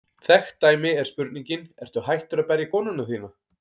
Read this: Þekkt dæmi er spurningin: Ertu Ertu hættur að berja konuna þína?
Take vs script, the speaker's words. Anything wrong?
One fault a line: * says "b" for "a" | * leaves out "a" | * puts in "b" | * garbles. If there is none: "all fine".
* leaves out "Ertu"